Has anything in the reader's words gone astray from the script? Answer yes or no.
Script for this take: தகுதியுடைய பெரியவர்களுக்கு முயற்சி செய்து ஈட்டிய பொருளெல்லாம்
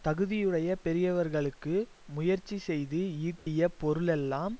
no